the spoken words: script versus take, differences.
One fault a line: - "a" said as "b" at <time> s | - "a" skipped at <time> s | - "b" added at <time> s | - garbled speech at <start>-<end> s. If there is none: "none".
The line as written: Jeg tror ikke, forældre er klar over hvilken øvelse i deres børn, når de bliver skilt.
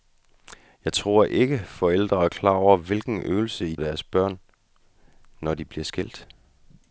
none